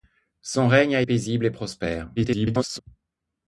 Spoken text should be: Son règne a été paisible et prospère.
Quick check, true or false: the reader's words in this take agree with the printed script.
false